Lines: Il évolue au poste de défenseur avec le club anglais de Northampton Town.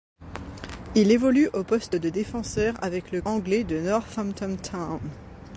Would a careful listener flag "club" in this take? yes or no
yes